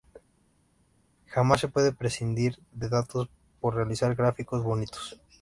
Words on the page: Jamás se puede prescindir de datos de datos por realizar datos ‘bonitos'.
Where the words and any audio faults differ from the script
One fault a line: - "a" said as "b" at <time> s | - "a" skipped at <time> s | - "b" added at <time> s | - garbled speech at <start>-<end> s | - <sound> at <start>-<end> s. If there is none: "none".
- "de datos" skipped at 3.3 s
- "datos" said as "gráficos" at 4.1 s